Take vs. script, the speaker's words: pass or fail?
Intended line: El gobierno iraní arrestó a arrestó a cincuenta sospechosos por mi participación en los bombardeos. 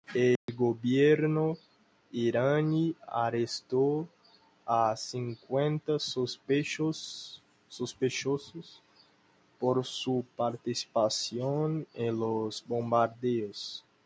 fail